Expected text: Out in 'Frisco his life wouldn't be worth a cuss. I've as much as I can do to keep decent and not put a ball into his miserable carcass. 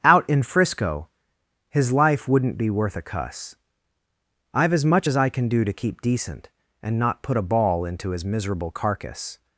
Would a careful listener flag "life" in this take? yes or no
no